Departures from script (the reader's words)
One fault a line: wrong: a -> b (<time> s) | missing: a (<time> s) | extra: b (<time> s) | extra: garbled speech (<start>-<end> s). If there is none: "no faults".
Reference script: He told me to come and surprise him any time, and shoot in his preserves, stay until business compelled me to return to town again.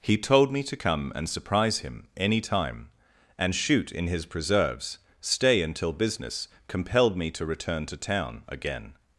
no faults